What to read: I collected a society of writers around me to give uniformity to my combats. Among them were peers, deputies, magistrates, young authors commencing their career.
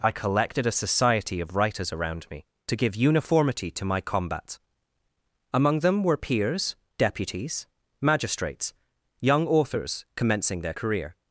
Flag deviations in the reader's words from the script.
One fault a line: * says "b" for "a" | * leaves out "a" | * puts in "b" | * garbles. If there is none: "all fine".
* says "combat" for "combats"